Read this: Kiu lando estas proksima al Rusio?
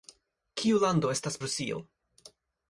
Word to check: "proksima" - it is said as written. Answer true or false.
false